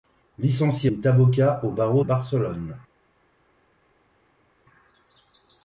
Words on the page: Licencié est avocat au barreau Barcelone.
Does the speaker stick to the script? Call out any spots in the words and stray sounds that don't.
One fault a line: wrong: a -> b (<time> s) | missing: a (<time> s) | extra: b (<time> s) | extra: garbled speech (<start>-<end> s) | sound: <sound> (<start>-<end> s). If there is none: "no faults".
no faults